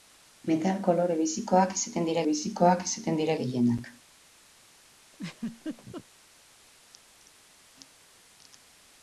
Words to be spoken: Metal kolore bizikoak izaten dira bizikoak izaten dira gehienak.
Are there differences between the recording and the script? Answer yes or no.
no